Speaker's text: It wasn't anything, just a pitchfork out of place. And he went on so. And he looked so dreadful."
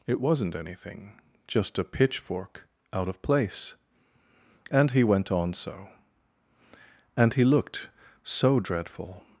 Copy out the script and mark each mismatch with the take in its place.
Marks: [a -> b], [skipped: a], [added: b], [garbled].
It wasn't anything, just a pitchfork out of place. And he went on so. And he looked so dreadful."